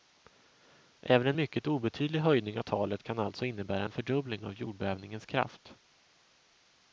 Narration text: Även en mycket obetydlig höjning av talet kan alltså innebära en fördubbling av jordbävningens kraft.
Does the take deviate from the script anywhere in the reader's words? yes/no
no